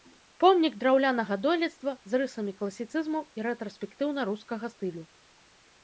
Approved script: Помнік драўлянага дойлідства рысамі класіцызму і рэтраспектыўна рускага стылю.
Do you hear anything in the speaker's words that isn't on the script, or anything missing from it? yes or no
yes